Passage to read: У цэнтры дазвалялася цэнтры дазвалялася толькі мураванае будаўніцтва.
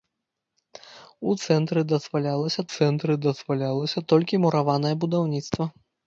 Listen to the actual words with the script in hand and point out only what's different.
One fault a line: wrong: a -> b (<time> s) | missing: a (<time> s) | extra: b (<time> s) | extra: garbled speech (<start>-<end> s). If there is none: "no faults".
no faults